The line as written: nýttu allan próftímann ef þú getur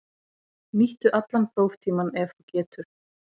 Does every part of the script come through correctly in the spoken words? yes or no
yes